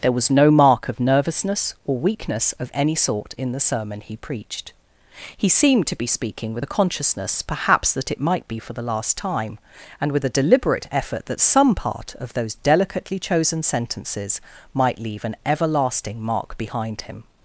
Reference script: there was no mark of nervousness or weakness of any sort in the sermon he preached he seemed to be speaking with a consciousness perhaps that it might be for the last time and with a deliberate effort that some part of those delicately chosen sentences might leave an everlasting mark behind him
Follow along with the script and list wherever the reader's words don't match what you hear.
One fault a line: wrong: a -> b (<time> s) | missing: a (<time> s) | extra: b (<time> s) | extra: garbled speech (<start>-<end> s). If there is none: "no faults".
no faults